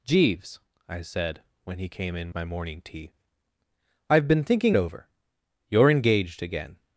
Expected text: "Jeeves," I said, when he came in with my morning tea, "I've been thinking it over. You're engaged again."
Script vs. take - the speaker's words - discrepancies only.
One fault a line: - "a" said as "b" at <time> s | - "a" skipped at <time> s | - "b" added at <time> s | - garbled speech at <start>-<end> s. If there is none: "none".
- "with" skipped at 2.3 s
- "it" skipped at 4.8 s